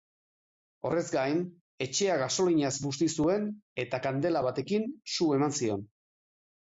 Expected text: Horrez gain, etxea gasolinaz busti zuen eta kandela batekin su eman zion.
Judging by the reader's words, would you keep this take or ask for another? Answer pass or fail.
pass